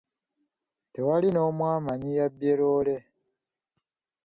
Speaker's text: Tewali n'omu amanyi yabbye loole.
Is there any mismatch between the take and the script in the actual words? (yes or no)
no